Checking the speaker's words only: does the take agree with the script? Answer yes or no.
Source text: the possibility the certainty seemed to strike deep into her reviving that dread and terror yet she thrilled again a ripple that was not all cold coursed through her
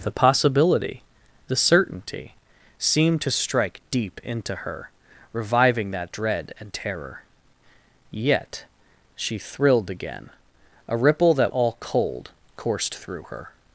no